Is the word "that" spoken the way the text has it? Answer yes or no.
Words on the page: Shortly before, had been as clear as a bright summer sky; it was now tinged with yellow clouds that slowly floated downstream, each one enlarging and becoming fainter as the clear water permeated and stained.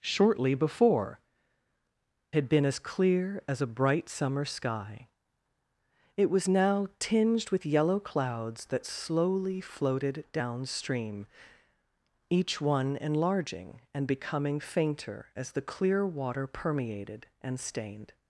yes